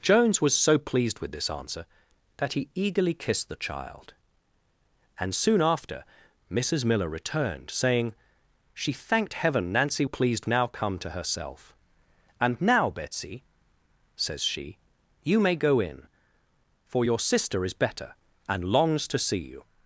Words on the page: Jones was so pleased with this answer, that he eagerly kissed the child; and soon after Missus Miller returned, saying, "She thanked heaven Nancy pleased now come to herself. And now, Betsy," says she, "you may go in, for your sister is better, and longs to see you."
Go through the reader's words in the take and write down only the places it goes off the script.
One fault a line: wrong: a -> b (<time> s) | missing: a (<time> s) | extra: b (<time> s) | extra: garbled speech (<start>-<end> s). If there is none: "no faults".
no faults